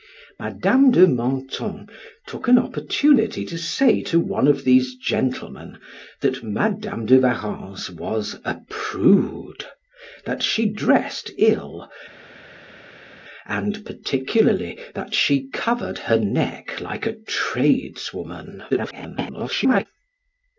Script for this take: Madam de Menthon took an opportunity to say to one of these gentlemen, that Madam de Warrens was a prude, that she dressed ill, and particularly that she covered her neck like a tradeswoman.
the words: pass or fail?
fail